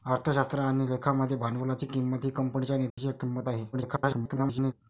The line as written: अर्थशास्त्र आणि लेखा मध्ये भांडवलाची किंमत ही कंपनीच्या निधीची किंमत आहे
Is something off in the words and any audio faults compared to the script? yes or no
yes